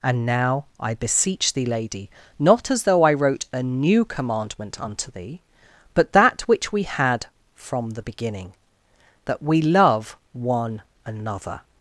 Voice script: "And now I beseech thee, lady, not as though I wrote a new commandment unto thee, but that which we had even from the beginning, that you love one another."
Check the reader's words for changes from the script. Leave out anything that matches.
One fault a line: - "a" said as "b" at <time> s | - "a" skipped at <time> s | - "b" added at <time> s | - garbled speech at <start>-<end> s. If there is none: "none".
- "even" skipped at 7.3 s
- "you" said as "we" at 9.4 s